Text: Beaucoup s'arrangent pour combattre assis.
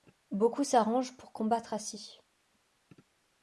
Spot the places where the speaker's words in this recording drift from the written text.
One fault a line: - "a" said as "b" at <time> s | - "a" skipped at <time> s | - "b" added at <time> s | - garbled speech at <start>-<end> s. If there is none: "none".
none